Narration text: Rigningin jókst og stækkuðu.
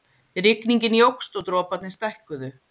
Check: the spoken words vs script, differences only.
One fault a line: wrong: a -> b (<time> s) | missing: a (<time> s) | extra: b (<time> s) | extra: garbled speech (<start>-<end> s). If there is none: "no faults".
extra: droparnir (1.5 s)